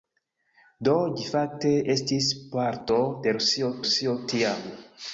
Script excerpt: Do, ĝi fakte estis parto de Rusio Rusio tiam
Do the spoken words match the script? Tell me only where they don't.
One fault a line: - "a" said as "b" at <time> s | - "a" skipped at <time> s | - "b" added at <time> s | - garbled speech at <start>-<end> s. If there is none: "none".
none